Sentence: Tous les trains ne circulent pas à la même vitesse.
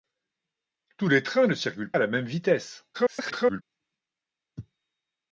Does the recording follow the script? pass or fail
fail